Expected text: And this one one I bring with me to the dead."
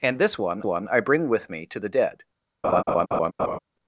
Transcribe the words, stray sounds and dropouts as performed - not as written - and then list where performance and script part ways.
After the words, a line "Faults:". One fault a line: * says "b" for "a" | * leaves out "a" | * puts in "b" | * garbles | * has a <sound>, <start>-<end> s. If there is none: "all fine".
And this one one I bring with me to the dead."
Faults:
* has a laugh, 2.6-3.6 s